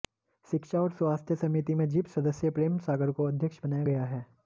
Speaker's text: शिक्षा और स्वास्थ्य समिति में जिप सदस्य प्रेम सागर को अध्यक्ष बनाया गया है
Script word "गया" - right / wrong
right